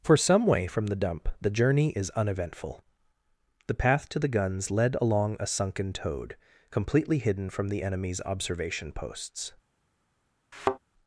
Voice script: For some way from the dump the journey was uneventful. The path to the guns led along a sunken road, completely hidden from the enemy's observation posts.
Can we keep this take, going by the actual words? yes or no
no